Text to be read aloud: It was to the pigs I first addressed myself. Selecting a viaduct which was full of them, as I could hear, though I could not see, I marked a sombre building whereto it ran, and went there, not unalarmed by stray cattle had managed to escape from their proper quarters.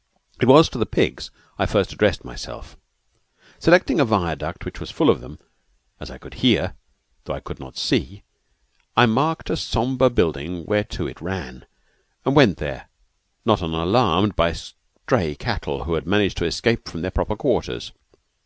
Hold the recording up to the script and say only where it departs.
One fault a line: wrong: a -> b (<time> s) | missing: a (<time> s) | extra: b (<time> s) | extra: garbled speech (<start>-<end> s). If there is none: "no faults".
extra: who (15.8 s)